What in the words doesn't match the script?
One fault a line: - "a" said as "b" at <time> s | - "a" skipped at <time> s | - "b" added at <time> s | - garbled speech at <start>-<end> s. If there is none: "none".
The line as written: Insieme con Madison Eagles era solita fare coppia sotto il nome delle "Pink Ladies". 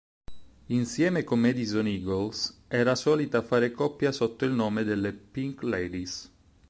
none